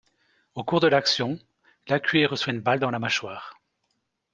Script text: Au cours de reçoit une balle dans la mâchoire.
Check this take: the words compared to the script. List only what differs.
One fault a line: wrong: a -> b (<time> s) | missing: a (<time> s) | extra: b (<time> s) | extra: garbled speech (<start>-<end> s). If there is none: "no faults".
extra: l'action Lacuée (0.9 s)